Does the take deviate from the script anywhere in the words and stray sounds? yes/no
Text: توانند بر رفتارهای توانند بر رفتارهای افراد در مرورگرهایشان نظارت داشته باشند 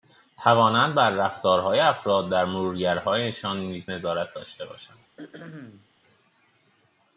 yes